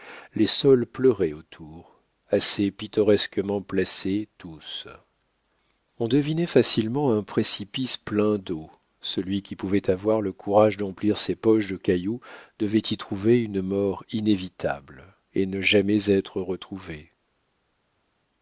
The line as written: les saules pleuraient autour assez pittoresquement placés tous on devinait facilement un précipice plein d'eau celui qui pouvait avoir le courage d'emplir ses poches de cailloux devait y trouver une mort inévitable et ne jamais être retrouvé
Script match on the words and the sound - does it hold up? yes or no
yes